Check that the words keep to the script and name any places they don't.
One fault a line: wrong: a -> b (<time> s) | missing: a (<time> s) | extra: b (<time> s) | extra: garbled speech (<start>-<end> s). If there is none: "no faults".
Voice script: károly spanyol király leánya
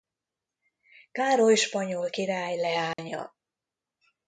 no faults